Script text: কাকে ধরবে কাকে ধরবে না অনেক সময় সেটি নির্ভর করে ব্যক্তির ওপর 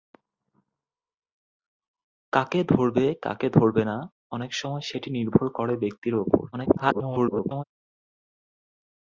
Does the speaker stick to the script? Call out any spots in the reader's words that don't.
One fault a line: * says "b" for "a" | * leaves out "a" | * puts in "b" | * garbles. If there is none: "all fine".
* garbles